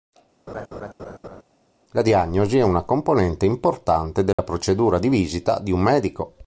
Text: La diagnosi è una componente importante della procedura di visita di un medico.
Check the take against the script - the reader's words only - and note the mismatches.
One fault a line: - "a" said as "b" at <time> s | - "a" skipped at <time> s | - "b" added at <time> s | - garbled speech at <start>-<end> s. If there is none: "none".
none